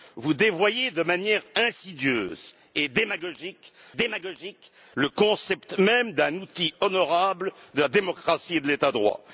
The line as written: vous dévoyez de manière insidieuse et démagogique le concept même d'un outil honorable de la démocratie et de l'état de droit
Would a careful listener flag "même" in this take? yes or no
no